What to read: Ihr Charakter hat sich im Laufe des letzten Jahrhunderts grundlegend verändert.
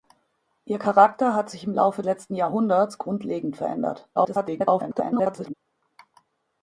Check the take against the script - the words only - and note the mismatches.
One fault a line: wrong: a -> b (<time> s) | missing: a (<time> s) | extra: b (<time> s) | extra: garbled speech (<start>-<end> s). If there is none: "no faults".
missing: des (2.0 s)
extra: garbled speech (4.2-5.5 s)